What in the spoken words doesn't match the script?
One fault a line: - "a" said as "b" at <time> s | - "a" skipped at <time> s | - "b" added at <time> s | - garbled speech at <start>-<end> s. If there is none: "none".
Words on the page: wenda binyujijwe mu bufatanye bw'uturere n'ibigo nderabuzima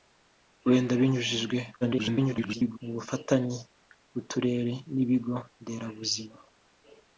- garbled speech at 1.8-2.8 s